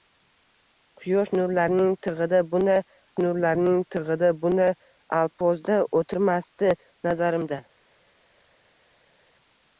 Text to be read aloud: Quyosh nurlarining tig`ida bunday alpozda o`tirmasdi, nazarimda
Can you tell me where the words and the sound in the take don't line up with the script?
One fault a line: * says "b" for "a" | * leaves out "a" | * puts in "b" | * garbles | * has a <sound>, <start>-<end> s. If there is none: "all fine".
* puts in "nurlarining tig`ida bunday"